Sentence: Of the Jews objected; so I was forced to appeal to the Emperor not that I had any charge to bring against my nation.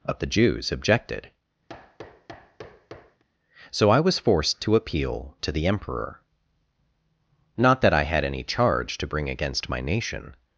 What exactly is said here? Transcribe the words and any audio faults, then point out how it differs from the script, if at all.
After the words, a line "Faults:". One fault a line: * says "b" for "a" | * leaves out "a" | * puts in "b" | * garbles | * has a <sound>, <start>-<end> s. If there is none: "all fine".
Of the Jews objected; so I was forced to appeal to the Emperor not that I had any charge to bring against my nation.
Faults:
* has a thud, 1.7-3.2 s